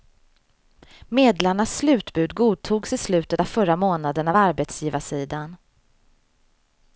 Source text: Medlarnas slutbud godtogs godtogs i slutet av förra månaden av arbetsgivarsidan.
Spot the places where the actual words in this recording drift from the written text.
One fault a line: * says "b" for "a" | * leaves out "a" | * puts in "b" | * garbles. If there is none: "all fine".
* leaves out "godtogs"